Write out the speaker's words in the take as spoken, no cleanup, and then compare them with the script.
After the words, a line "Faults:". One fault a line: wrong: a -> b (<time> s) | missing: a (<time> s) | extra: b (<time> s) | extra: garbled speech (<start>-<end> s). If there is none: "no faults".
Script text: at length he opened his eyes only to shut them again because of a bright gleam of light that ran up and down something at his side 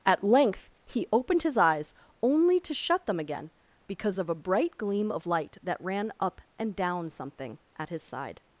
at length he opened his eyes only to shut them again because of a bright gleam of light that ran up and down something at his side
Faults:
no faults